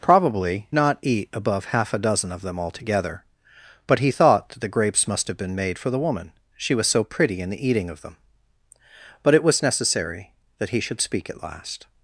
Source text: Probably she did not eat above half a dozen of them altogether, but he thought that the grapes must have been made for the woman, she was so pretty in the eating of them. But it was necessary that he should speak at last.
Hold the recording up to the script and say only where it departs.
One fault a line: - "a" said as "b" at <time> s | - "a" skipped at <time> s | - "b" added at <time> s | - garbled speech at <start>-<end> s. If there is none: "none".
- "she did" skipped at 0.7 s